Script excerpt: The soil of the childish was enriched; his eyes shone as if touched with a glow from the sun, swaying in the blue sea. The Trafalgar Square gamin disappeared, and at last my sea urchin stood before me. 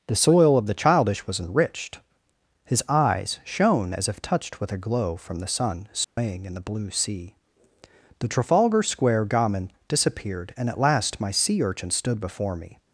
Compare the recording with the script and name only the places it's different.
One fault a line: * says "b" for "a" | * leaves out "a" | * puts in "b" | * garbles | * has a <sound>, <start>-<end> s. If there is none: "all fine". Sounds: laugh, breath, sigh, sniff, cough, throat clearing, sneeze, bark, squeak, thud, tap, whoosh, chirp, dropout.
* has a dropout, 6.0-6.2 s